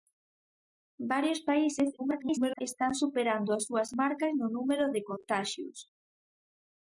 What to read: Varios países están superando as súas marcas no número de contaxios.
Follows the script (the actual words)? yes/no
no